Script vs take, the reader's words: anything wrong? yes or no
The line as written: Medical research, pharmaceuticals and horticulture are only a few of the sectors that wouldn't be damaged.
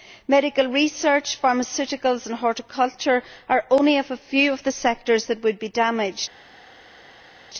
yes